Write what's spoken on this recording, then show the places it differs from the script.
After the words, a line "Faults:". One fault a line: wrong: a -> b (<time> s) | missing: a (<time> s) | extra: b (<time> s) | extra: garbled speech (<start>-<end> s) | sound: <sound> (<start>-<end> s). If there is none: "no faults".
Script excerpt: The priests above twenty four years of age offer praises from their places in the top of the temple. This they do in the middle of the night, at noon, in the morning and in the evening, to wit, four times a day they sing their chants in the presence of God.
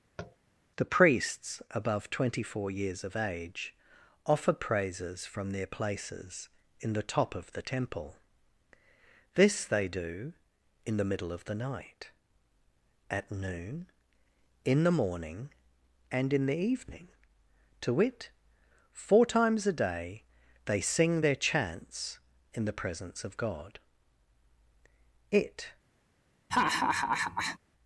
The priests above twenty four years of age offer praises from their places in the top of the temple. This they do in the middle of the night, at noon, in the morning and in the evening, to wit, four times a day they sing their chants in the presence of God. It
Faults:
sound: tap (0.2-0.4 s)
extra: It (25.3 s)
sound: laugh (26.5-27.6 s)